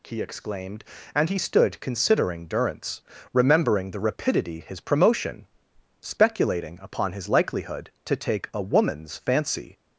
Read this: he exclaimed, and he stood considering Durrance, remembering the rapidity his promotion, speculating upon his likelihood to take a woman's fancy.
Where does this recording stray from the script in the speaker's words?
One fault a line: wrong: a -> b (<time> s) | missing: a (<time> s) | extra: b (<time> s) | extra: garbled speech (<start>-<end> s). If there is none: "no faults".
no faults